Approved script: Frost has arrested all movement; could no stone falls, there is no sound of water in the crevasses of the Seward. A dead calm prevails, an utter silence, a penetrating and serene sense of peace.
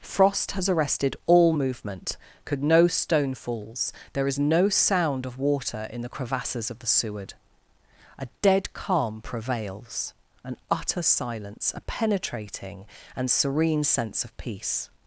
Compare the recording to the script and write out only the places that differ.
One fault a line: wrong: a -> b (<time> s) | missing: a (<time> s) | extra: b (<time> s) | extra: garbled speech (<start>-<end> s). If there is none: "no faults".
no faults